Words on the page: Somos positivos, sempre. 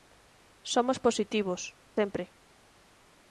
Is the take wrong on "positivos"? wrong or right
right